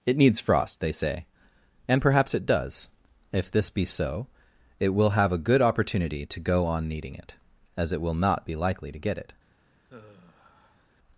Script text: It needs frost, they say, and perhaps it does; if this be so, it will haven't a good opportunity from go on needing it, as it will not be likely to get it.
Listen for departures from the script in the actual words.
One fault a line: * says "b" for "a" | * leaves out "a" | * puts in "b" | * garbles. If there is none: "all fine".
* says "have" for "haven't"
* says "to" for "from"